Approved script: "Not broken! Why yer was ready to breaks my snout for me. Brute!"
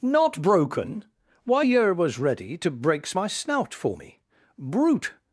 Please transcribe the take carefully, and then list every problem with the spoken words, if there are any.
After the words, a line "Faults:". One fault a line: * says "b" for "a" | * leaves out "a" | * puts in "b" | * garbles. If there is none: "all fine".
"Not broken! Why yer was ready to breaks my snout for me. Brute!"
Faults:
all fine